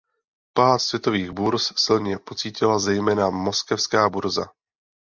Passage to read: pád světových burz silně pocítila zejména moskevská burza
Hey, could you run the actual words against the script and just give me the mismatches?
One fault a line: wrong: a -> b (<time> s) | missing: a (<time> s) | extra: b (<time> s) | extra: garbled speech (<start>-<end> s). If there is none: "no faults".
no faults